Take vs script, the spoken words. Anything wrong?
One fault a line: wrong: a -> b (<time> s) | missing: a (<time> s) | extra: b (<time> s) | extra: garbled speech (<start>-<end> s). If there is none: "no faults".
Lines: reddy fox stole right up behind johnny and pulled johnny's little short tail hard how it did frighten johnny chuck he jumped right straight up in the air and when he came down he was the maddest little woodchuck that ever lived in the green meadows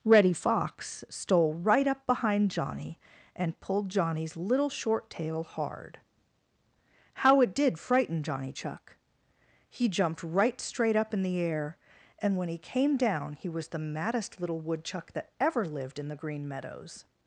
no faults